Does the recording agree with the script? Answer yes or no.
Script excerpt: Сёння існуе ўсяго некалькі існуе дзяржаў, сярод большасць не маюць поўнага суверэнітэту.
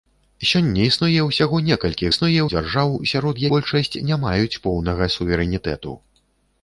yes